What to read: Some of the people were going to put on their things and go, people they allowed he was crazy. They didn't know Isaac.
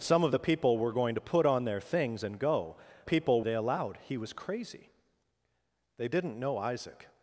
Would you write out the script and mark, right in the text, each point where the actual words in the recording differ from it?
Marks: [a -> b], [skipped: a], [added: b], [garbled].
Some of the people were going to put on their things and go, people they allowed he was crazy. They didn't know Isaac.